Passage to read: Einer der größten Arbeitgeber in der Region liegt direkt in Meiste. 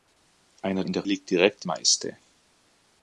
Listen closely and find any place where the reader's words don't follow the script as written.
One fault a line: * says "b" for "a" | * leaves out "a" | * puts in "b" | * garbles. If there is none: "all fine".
* leaves out "der größten Arbeitgeber"
* leaves out "Region"
* leaves out "in"